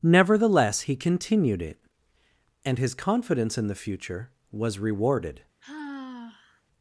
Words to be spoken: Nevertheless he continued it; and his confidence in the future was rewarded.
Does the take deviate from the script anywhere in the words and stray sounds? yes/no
yes